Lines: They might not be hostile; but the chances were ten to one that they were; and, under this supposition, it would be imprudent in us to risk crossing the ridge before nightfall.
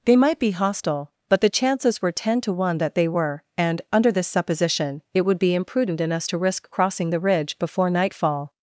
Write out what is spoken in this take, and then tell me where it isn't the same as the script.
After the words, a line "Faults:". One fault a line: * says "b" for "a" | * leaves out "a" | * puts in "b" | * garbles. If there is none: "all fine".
They might be hostile; but the chances were ten to one that they were; and, under this supposition, it would be imprudent in us to risk crossing the ridge before nightfall.
Faults:
* leaves out "not"